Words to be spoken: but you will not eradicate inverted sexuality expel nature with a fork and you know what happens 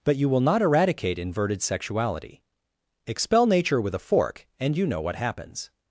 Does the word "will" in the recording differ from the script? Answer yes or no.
no